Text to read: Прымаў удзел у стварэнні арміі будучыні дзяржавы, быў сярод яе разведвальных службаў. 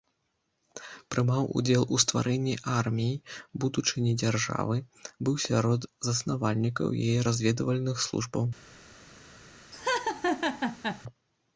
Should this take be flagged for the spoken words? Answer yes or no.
yes